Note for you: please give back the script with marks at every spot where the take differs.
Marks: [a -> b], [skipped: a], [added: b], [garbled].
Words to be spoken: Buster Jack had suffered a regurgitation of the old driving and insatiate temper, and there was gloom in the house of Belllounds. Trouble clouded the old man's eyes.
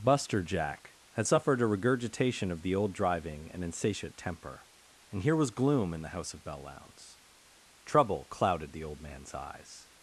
Buster Jack had suffered a regurgitation of the old driving and insatiate temper, and [there -> here] was gloom in the house of Belllounds. Trouble clouded the old man's eyes.